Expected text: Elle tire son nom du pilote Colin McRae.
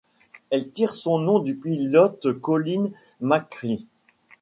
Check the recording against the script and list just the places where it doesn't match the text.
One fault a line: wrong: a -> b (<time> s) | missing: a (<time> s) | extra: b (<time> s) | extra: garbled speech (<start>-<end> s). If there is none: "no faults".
no faults